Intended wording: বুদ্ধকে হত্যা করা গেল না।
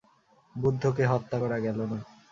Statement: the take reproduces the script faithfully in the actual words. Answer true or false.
true